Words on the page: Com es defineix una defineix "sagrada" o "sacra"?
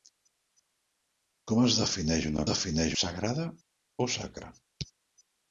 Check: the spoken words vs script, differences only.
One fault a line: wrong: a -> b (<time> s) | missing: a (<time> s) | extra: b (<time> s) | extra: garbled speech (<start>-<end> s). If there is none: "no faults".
no faults